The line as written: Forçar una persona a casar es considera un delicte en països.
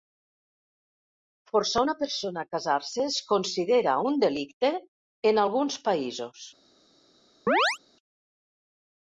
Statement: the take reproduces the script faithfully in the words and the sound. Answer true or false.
false